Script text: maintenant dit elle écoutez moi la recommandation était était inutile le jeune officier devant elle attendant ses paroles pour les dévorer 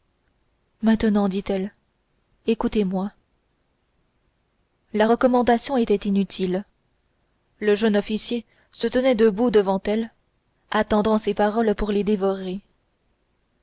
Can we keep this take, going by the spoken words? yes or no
no